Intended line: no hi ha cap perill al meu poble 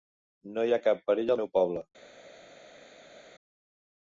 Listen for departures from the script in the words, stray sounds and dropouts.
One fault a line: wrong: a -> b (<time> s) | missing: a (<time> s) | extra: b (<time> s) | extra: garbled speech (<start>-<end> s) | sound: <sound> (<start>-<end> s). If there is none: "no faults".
no faults